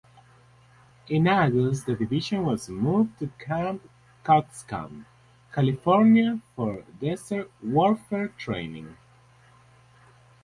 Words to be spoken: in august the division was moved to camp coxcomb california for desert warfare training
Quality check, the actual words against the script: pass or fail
pass